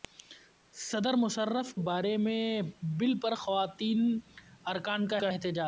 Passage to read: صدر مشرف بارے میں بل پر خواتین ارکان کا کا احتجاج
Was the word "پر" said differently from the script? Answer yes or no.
no